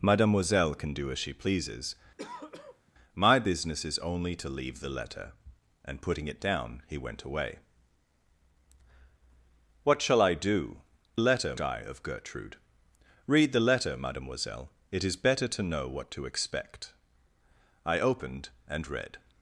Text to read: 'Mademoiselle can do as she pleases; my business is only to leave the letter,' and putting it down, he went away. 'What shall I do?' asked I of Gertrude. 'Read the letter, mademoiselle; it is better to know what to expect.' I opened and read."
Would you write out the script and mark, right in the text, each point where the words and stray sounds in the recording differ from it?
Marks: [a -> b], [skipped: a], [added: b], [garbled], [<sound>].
'Mademoiselle can do as she pleases; [throat clearing] my business is only to leave the letter,' and putting it down, he went away. 'What shall I do?' [asked -> letter] I of Gertrude. 'Read the letter, mademoiselle; it is better to know what to expect.' I opened and read."